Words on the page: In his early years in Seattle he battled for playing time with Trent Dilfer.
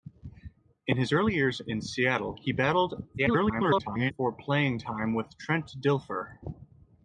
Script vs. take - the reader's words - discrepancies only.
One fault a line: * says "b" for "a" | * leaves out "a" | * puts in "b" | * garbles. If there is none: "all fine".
* garbles